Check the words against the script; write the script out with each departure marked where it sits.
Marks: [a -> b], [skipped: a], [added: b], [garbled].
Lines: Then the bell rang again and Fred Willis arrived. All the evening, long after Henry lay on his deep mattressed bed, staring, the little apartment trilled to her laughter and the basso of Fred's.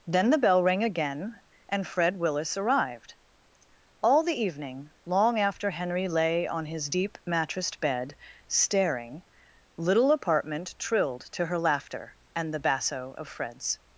Then the bell rang again and Fred Willis arrived. All the evening, long after Henry lay on his deep mattressed bed, staring, [skipped: the] little apartment trilled to her laughter and the basso of Fred's.